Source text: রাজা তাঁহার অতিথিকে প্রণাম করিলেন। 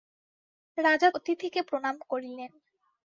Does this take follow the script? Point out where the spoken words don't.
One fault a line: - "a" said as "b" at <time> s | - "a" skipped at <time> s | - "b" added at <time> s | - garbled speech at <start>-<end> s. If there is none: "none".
- "তাঁহার" skipped at 1.1 s